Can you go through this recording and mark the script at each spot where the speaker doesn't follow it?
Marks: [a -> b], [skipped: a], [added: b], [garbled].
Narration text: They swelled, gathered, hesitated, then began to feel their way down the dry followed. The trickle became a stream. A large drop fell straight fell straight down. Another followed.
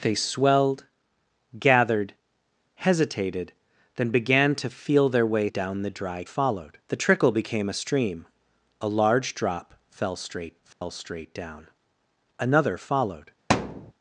They swelled, gathered, hesitated, then began to feel their way down the dry followed. The trickle became a stream. A large drop fell straight fell straight down. Another followed.